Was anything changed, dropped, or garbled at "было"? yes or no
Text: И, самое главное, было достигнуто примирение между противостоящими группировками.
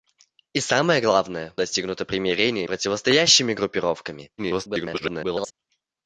yes